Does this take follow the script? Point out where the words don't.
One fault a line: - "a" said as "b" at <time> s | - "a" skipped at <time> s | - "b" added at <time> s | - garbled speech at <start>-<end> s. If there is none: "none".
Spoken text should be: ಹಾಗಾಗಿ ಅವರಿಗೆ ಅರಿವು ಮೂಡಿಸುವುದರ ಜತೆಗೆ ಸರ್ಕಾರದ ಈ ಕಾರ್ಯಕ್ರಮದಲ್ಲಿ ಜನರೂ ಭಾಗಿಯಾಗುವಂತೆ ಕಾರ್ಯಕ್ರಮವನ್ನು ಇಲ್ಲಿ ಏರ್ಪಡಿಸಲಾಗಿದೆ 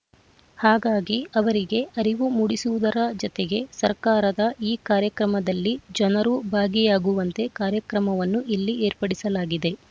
none